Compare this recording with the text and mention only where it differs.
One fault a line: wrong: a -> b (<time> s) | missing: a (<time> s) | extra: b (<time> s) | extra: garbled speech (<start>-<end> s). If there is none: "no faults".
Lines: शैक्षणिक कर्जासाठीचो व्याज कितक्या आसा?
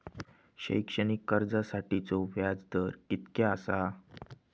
extra: दर (2.7 s)